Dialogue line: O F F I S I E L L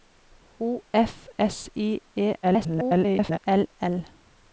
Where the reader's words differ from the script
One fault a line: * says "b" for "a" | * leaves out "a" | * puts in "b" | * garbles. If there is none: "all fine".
* leaves out "F I"
* garbles